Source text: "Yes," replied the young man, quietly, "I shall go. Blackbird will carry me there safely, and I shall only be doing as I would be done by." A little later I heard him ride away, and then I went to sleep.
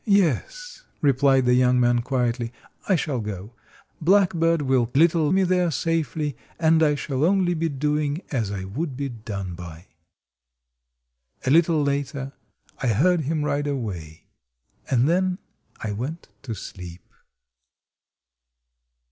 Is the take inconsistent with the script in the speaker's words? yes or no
yes